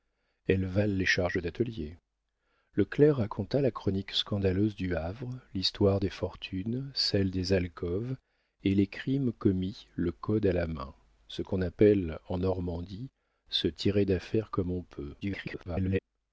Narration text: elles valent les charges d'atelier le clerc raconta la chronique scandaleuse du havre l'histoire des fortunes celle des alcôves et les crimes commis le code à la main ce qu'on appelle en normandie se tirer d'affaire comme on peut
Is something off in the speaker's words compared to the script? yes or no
yes